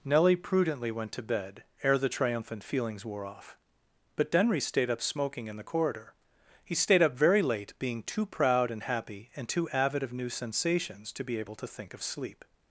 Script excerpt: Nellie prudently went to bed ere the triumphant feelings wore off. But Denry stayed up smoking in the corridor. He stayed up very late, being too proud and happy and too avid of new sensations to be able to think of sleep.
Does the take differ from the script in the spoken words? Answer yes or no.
no